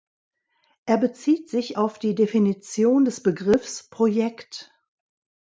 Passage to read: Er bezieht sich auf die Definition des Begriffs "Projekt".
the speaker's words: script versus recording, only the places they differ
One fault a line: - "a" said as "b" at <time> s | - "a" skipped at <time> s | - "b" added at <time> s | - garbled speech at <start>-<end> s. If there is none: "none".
none